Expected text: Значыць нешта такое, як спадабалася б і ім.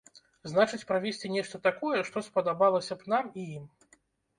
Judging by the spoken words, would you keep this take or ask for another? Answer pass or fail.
fail